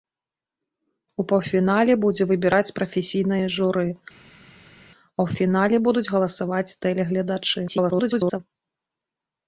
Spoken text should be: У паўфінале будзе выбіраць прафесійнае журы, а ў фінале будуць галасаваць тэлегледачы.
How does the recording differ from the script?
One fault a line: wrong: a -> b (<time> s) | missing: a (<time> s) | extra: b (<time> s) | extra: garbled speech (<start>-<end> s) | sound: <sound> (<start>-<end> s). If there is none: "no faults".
extra: garbled speech (7.7-8.4 s)